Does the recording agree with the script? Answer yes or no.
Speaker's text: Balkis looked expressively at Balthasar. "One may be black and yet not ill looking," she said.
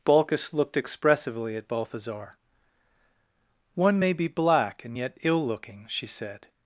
no